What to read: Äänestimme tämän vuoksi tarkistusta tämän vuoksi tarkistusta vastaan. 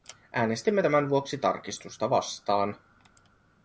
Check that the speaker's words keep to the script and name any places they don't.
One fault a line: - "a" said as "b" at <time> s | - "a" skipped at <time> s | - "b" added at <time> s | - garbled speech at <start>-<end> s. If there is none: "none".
- "tämän vuoksi tarkistusta" skipped at 2.1 s